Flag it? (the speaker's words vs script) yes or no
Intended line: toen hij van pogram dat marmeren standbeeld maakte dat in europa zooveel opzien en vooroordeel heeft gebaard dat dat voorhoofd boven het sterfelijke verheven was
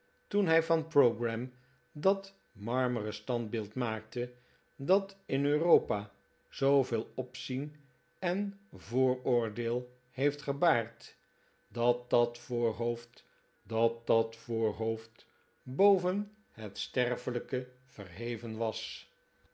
yes